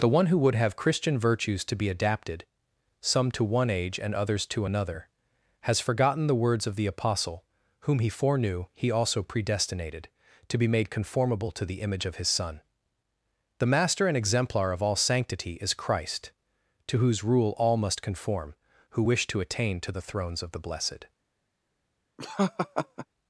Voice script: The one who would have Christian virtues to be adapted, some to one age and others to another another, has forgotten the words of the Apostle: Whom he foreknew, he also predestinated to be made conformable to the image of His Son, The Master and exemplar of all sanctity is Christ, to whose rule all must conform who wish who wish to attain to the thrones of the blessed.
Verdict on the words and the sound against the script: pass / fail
fail